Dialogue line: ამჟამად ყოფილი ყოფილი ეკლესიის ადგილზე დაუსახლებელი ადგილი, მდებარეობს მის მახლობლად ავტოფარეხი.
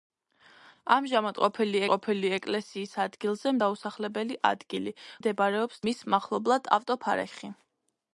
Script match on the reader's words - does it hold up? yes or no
yes